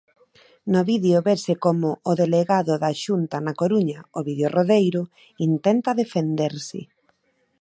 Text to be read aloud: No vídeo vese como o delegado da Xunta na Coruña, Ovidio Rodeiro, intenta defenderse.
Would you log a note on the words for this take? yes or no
no